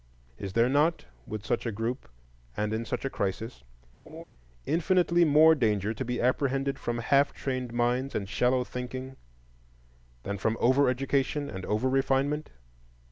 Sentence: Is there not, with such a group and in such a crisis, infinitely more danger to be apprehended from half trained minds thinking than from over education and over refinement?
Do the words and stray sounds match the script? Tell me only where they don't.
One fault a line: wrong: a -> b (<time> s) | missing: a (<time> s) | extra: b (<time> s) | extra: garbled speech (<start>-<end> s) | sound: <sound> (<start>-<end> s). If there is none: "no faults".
sound: laugh (4.1-4.2 s)
extra: and shallow (8.2 s)